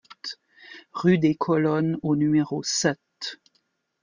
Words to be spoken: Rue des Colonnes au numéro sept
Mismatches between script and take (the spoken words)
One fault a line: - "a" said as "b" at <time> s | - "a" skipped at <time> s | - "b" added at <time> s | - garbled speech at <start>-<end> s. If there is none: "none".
none